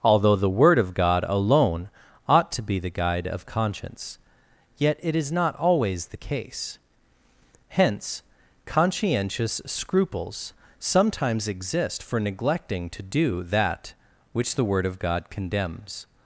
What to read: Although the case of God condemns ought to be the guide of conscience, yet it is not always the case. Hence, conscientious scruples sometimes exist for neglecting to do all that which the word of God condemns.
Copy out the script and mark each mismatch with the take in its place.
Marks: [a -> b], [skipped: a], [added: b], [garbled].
Although the [case -> word] of God [condemns -> alone] ought to be the guide of conscience, yet it is not always the case. Hence, conscientious scruples sometimes exist for neglecting to do [skipped: all] that which the word of God condemns.